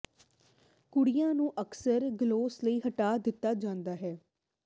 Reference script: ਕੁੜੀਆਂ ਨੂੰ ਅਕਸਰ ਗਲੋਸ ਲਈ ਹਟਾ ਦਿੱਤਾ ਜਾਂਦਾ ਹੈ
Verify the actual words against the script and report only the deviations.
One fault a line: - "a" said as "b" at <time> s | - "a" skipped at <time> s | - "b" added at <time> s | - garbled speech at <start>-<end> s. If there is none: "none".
none